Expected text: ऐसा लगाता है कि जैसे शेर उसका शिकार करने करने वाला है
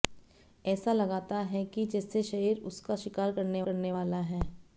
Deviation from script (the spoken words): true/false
false